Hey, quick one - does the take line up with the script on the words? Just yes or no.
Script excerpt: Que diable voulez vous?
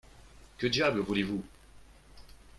yes